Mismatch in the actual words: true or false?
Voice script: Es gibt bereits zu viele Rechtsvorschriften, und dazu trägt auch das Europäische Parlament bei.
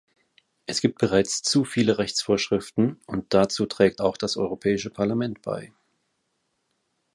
false